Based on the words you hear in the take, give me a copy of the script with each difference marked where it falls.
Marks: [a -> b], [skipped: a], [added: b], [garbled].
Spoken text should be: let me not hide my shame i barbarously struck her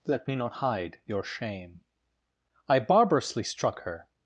let me not hide [my -> your] shame i barbarously struck her